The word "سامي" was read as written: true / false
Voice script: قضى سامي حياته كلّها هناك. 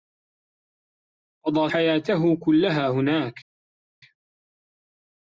false